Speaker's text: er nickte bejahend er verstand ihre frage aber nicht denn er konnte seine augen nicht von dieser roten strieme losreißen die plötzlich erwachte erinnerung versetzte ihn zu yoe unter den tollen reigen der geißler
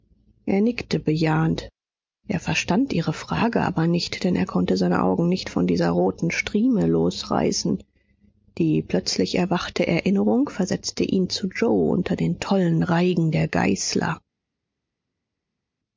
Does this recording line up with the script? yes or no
yes